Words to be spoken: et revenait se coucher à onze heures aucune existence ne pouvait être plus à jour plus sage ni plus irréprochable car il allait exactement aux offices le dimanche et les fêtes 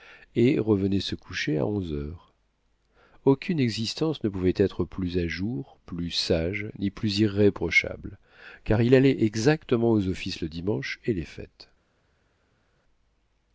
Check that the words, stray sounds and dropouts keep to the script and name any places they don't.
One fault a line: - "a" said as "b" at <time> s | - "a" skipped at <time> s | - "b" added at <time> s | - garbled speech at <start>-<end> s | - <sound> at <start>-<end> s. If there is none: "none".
none